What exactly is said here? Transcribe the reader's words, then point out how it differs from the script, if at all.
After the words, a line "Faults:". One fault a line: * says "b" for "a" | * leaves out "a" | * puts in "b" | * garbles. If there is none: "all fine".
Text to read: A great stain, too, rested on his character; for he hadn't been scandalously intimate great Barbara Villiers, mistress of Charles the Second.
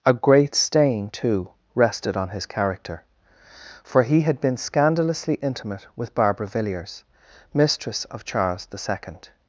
A great stain, too, rested on his character; for he had been scandalously intimate with Barbara Villiers, mistress of Charles the Second.
Faults:
* says "had" for "hadn't"
* says "with" for "great"